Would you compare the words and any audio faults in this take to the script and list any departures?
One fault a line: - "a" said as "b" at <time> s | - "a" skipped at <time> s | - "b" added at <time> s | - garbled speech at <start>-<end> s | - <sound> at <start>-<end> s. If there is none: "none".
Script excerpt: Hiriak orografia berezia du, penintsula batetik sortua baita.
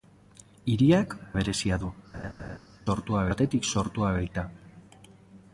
- "orografia" skipped at 1.1 s
- laugh at 2.1-2.6 s
- "penintsula" said as "sortua" at 2.9 s